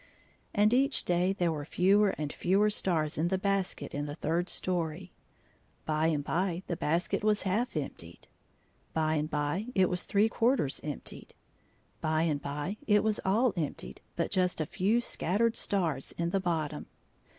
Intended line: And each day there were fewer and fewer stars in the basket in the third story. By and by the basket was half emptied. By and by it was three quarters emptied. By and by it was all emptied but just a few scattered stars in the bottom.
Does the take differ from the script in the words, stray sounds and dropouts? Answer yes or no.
no